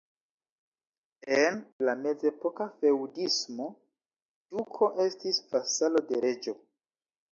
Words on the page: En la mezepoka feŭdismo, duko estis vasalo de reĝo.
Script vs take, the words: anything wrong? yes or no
no